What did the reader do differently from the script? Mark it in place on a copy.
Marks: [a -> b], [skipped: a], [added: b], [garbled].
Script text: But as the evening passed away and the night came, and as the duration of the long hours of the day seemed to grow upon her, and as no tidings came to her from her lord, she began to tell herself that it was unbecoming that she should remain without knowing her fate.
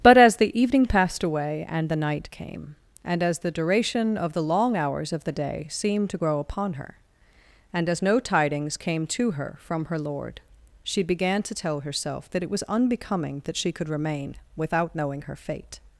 But as the evening passed away and the night came, and as the duration of the long hours of the day seemed to grow upon her, and as no tidings came to her from her lord, she began to tell herself that it was unbecoming that she [should -> could] remain without knowing her fate.